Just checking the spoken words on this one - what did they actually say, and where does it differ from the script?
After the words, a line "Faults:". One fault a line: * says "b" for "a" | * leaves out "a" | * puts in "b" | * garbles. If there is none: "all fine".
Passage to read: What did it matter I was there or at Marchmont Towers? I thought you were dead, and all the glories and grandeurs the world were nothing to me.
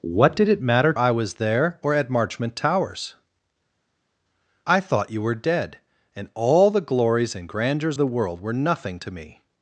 What did it matter I was there or at Marchmont Towers? I thought you were dead, and all the glories and grandeurs the world were nothing to me.
Faults:
all fine